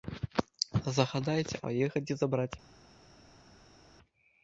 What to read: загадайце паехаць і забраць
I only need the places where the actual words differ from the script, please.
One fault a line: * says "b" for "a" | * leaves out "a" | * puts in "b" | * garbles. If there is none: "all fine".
all fine